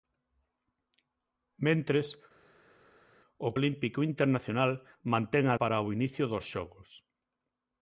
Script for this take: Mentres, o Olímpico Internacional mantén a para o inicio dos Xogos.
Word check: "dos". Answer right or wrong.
right